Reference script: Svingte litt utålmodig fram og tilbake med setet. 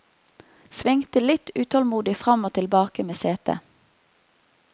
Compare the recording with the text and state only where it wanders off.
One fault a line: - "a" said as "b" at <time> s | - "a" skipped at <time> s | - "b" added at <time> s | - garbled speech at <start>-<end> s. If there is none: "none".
none